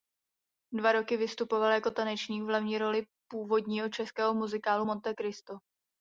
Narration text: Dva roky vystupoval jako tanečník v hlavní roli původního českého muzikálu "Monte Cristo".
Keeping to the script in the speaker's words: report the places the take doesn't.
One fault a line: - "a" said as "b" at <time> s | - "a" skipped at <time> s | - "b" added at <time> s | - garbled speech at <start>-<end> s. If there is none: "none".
none